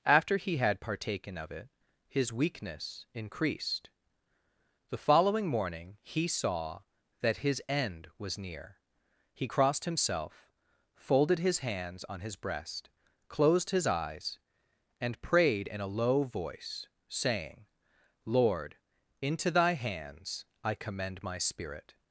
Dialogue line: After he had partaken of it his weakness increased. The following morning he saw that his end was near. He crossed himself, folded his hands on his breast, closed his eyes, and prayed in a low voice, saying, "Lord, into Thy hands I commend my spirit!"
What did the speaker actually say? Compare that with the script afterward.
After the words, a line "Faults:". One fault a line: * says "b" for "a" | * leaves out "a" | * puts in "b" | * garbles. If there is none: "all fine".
After he had partaken of it his weakness increased. The following morning he saw that his end was near. He crossed himself, folded his hands on his breast, closed his eyes, and prayed in a low voice, saying, "Lord, into Thy hands I commend my spirit!"
Faults:
all fine